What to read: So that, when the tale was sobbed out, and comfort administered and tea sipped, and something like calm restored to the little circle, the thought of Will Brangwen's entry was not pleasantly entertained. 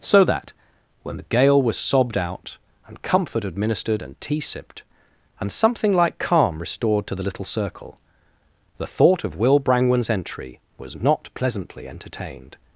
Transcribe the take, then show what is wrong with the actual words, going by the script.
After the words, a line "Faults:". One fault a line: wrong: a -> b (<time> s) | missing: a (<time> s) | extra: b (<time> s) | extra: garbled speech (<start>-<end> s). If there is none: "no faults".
So that, when the gale was sobbed out, and comfort administered and tea sipped, and something like calm restored to the little circle, the thought of Will Brangwen's entry was not pleasantly entertained.
Faults:
wrong: tale -> gale (1.2 s)